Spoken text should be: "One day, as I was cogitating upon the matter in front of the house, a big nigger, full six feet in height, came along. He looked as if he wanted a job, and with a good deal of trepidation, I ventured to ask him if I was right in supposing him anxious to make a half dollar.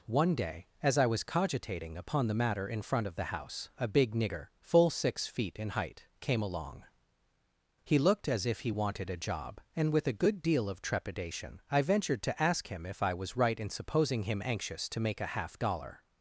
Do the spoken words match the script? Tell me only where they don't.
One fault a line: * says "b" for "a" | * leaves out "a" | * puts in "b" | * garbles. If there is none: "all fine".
all fine